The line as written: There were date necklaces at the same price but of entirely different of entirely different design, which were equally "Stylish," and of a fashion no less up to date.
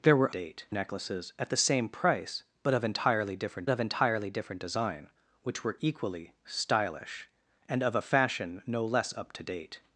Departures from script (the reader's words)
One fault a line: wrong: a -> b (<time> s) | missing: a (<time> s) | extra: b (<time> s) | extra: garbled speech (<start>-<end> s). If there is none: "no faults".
no faults